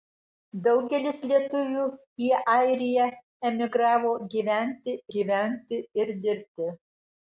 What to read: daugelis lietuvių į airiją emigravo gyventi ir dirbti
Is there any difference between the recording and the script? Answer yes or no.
yes